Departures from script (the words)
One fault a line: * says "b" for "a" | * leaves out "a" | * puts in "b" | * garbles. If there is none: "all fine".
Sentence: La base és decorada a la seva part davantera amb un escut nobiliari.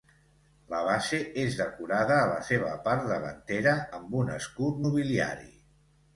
all fine